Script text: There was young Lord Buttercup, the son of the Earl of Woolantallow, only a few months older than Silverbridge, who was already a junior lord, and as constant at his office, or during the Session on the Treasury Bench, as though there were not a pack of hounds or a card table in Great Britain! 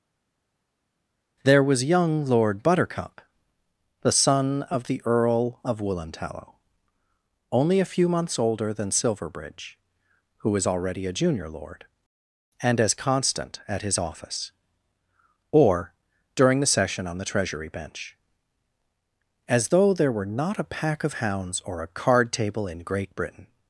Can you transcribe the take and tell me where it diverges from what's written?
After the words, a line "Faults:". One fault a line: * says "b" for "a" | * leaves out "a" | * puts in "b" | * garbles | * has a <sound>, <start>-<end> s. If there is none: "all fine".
There was young Lord Buttercup, the son of the Earl of Woolantallow, only a few months older than Silverbridge, who was already a junior lord, and as constant at his office, or during the Session on the Treasury Bench, as though there were not a pack of hounds or a card table in Great Britain!
Faults:
all fine